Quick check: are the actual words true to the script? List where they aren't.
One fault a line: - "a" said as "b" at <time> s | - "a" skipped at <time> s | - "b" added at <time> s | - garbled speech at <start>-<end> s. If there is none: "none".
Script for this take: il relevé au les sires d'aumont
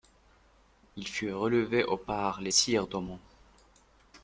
- "fut" added at 1.1 s
- "par" added at 1.9 s